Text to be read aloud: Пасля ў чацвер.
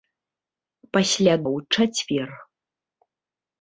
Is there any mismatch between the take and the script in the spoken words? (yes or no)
no